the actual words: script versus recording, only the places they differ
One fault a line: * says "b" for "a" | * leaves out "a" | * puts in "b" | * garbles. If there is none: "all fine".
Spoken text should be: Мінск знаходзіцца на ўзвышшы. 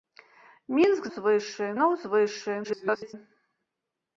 * says "ўзвышшы" for "знаходзіцца"
* garbles